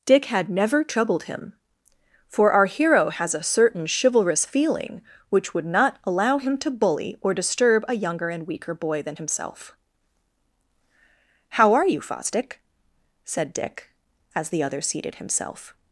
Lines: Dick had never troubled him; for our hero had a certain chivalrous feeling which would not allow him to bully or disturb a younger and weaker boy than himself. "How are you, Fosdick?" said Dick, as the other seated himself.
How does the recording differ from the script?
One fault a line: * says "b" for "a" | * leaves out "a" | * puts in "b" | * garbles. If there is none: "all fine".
* says "has" for "had"